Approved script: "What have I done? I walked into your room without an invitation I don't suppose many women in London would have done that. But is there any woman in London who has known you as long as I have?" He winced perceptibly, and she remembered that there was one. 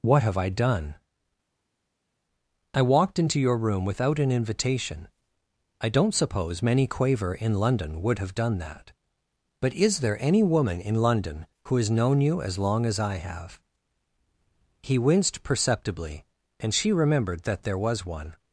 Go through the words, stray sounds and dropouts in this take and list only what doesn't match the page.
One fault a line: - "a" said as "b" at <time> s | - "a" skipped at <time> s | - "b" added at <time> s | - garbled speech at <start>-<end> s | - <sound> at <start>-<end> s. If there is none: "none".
- "women" said as "quaver" at 6.9 s